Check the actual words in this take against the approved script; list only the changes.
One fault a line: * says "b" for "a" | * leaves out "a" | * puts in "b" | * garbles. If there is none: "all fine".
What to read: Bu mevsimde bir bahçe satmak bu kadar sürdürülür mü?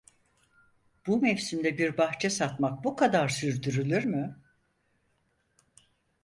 all fine